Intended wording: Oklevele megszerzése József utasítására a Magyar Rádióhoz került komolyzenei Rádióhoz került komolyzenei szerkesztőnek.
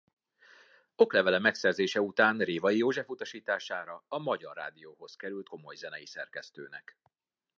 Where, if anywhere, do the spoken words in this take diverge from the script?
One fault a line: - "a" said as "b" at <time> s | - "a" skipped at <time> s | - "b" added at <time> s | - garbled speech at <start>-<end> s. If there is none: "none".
- "után Révai" added at 2.0 s
- "Rádióhoz került komolyzenei" skipped at 6.1 s